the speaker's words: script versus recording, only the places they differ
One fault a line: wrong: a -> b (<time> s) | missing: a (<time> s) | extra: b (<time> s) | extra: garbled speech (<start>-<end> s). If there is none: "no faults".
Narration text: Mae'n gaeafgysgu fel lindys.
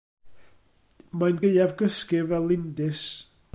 no faults